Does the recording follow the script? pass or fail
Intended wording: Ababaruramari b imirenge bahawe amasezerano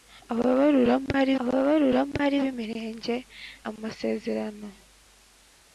fail